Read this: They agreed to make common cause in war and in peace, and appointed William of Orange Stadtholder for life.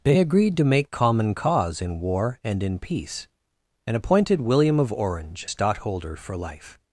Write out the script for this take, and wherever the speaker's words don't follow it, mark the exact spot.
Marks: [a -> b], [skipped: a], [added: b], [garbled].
They agreed to make common cause in war and in peace, and appointed William of Orange Stadtholder for life.